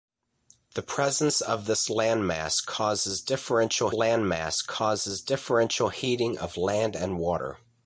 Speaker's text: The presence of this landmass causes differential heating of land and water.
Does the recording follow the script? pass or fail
fail